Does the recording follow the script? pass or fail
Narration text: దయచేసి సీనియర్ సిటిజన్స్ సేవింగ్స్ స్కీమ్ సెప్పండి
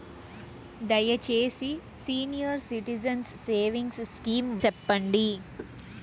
pass